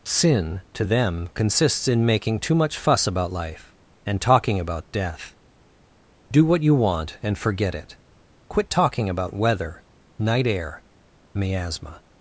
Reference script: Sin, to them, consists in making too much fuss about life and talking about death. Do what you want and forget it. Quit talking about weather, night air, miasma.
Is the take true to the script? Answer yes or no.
yes